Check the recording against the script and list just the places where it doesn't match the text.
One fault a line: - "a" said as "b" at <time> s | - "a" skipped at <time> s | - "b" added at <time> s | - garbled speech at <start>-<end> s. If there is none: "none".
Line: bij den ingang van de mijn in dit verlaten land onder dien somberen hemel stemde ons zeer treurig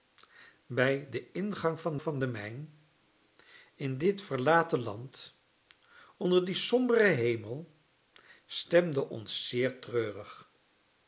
- "van" added at 2.0 s